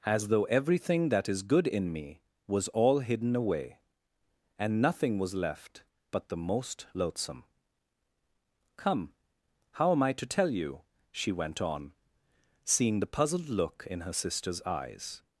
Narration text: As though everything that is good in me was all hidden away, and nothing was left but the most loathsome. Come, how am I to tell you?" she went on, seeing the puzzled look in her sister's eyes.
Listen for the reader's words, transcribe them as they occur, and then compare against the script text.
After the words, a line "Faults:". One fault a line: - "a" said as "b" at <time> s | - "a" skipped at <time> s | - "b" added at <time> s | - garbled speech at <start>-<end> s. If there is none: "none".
As though everything that is good in me was all hidden away, and nothing was left but the most loathsome. Come, how am I to tell you?" she went on, seeing the puzzled look in her sister's eyes.
Faults:
none